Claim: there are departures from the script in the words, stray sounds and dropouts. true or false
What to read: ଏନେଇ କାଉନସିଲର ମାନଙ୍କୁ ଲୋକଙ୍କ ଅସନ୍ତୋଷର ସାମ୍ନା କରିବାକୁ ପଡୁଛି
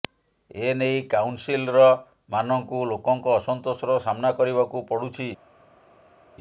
false